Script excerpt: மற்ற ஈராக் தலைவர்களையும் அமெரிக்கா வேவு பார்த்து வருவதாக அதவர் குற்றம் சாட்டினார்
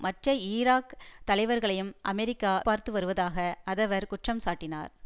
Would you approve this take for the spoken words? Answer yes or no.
no